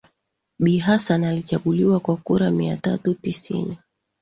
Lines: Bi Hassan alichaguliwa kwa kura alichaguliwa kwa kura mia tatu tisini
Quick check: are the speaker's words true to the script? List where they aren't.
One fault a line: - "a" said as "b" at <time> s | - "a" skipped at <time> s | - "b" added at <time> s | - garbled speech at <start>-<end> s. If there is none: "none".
- "alichaguliwa kwa kura" skipped at 2.5 s